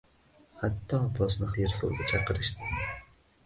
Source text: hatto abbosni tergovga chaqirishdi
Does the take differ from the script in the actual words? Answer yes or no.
no